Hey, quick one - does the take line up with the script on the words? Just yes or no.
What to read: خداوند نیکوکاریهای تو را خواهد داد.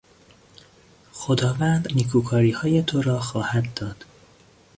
yes